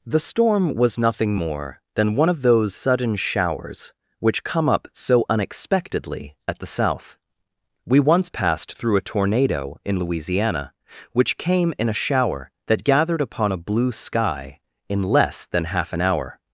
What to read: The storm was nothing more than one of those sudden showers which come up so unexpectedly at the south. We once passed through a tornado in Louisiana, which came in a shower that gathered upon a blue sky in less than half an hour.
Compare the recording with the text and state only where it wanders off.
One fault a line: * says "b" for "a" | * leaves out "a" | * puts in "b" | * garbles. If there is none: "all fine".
all fine